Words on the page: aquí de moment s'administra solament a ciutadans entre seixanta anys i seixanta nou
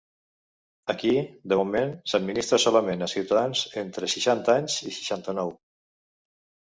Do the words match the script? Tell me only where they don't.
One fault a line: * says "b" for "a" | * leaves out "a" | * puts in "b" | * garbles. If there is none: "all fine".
all fine